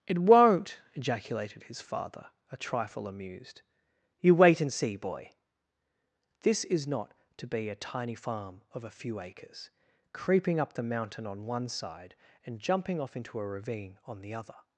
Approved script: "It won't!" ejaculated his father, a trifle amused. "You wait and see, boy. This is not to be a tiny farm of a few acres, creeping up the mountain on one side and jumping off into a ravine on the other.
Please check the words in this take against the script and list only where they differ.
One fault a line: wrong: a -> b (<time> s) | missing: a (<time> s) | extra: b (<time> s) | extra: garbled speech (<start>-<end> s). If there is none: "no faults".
no faults